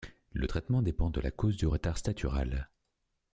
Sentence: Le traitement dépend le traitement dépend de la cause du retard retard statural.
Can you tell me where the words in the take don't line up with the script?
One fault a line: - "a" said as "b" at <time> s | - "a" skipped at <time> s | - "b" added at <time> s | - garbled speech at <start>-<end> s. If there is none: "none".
- "le traitement dépend" skipped at 1.1 s
- "retard" skipped at 2.0 s